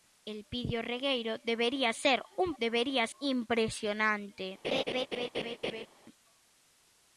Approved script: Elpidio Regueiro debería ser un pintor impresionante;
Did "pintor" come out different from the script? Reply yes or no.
yes